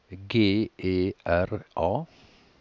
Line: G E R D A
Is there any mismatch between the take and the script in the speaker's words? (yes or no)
yes